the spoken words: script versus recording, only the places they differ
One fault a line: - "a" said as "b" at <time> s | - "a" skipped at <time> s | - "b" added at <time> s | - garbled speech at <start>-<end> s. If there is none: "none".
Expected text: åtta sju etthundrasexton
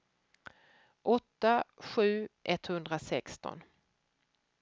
none